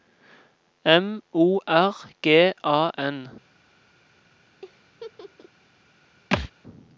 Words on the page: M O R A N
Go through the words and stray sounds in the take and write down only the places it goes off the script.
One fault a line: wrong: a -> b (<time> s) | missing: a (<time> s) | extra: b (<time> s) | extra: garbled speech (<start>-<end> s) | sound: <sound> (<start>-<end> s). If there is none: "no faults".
extra: G (2.2 s)
sound: laugh (4.6-5.5 s)
sound: thud (6.3-6.5 s)